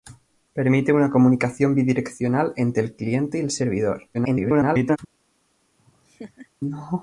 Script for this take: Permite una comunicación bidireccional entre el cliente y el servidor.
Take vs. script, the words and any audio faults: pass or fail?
fail